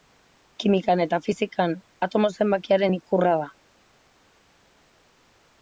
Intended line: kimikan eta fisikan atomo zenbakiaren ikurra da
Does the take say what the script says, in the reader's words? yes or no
yes